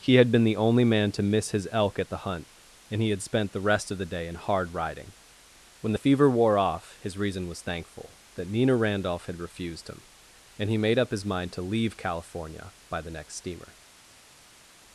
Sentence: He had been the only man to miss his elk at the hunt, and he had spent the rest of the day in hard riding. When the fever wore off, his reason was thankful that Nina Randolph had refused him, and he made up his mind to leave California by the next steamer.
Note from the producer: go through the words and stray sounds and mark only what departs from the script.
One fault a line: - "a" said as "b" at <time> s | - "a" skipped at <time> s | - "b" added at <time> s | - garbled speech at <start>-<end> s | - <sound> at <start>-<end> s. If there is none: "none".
none